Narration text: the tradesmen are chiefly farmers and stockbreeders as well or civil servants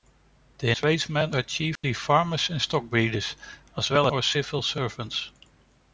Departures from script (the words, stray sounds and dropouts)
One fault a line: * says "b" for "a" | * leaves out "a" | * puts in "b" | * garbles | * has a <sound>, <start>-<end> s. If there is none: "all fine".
* has a dropout, 1.8-1.8 s